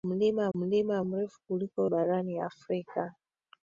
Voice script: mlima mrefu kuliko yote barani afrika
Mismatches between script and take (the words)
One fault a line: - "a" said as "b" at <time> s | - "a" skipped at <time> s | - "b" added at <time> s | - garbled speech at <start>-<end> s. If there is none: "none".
- "mlima" added at 0.6 s
- "yote" skipped at 1.8 s